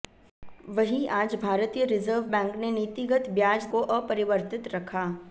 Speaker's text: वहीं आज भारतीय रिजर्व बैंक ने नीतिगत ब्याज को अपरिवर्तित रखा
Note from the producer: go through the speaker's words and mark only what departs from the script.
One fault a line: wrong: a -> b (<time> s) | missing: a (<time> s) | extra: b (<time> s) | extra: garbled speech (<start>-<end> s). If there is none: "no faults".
no faults